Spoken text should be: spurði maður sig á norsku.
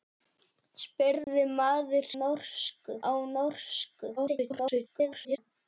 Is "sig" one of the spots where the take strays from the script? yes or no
yes